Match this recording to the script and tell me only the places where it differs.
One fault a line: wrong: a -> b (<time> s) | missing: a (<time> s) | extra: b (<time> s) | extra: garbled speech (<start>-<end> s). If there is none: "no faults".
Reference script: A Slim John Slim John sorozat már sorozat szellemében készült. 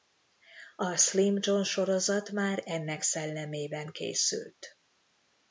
missing: Slim John (1.6 s)
wrong: sorozat -> ennek (2.6 s)